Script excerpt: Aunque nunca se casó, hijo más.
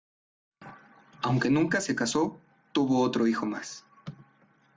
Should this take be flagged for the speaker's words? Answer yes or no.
yes